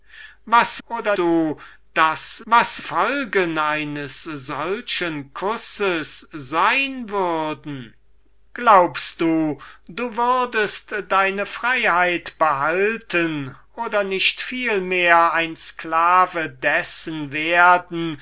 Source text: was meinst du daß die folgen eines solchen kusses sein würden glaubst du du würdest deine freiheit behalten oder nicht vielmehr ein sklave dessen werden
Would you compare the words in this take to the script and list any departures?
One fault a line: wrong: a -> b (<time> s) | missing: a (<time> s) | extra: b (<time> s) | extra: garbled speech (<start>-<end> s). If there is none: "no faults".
wrong: meinst -> oder (0.9 s)
wrong: die -> was (2.5 s)